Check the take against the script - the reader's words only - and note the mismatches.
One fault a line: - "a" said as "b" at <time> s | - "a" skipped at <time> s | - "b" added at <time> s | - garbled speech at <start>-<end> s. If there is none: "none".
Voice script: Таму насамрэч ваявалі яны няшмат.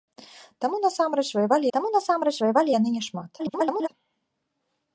- "таму насамрэч ваявалі" added at 1.7 s
- garbled speech at 3.4-3.9 s